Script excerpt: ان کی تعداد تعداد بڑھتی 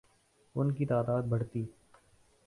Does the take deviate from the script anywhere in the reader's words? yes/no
yes